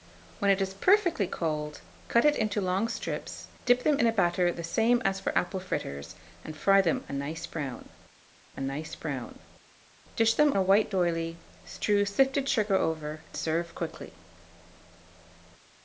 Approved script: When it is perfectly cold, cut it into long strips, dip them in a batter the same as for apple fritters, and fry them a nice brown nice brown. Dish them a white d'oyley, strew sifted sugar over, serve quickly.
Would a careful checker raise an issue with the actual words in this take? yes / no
no